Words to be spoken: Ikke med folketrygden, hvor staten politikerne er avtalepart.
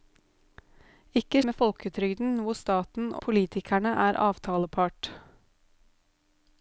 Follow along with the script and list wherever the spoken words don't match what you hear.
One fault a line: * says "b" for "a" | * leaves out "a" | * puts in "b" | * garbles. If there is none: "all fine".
all fine